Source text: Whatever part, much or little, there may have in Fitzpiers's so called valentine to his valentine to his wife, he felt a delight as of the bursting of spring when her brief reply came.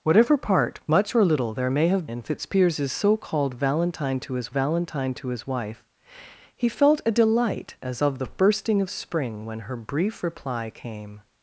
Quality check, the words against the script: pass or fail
pass